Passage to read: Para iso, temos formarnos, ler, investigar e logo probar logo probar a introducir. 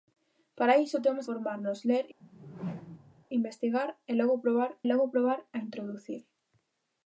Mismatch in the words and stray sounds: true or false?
true